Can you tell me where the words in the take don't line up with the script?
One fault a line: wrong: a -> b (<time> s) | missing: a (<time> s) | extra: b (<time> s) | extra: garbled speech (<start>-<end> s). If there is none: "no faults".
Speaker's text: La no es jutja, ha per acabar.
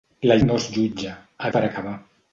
no faults